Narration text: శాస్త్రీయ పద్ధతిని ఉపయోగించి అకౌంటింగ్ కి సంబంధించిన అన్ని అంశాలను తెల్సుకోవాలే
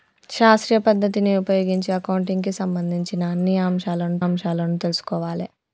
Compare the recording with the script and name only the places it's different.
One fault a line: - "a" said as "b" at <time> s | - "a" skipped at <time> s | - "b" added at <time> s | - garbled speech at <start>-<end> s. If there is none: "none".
- "అంశాలను" added at 4.2 s